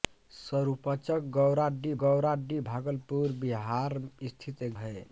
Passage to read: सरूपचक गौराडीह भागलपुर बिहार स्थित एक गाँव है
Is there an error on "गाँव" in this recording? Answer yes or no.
yes